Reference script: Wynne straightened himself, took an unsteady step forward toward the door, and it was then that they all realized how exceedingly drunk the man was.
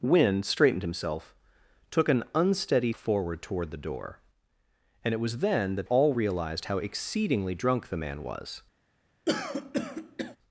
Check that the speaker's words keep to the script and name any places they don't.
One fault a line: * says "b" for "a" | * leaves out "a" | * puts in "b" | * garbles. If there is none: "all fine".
* leaves out "step"
* leaves out "they"